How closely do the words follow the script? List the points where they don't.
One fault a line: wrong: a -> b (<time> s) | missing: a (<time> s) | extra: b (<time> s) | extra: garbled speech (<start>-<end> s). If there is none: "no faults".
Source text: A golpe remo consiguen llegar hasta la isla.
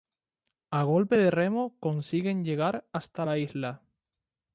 extra: de (1.2 s)